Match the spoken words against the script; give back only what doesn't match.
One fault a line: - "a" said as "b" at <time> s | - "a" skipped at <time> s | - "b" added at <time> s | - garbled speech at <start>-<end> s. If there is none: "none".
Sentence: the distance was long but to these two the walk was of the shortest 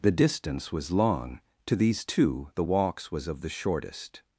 - "but" skipped at 1.4 s
- "walk" said as "walks" at 2.6 s